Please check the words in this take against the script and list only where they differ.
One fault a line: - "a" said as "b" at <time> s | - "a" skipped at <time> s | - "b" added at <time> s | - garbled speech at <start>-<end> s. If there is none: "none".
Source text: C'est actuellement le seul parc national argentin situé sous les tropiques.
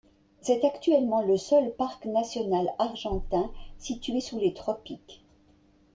none